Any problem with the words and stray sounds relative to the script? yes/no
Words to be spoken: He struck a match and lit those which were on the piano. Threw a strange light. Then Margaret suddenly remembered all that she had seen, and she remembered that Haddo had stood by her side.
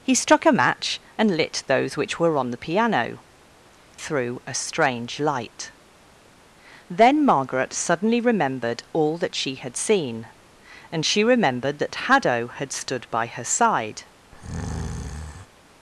yes